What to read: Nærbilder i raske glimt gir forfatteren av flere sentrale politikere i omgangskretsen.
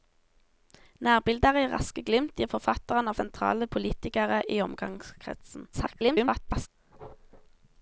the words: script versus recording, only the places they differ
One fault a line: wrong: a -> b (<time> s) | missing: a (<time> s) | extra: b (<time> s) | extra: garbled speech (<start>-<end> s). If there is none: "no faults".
missing: flere (3.2 s)
extra: garbled speech (5.7-6.7 s)